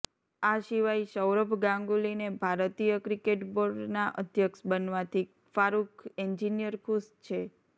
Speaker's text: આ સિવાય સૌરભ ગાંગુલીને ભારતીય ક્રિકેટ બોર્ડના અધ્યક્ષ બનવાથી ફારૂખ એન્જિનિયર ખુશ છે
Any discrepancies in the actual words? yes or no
no